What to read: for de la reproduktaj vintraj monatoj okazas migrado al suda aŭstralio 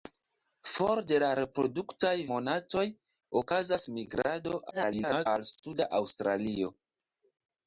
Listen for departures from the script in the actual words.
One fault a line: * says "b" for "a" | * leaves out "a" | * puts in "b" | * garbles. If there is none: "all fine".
* leaves out "vintraj"
* garbles